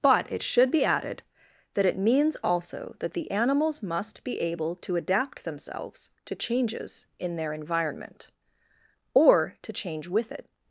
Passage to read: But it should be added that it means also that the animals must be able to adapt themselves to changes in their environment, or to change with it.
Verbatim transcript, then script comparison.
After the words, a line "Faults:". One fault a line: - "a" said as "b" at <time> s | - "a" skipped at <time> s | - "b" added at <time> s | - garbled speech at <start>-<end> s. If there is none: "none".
But it should be added that it means also that the animals must be able to adapt themselves to changes in their environment, or to change with it.
Faults:
none